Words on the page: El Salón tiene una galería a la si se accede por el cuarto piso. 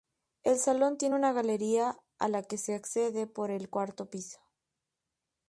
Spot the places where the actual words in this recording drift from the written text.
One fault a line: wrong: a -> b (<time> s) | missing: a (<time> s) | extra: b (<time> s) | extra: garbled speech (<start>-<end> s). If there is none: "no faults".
wrong: si -> que (2.4 s)